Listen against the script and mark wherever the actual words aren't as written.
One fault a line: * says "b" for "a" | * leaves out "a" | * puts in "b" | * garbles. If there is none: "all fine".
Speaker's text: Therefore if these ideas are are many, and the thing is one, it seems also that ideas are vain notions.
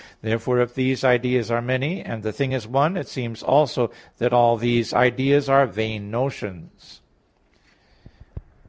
* leaves out "are"
* puts in "all these"